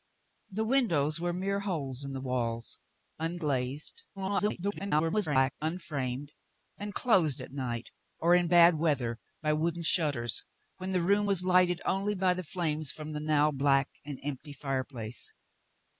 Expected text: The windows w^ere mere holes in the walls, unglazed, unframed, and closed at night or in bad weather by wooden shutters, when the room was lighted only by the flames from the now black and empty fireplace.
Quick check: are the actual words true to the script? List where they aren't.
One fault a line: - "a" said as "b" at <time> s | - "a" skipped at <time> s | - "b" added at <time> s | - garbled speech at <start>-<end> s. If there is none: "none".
- garbled speech at 4.2-5.5 s